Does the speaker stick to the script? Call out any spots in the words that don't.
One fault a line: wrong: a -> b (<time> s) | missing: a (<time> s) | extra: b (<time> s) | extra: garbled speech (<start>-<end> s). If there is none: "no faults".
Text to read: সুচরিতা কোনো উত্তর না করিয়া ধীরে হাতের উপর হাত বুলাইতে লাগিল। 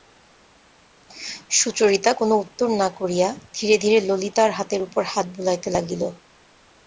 extra: ধীরে ললিতার (3.8 s)